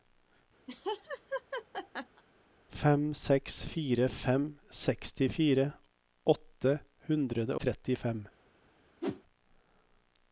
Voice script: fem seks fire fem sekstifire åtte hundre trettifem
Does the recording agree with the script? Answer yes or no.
yes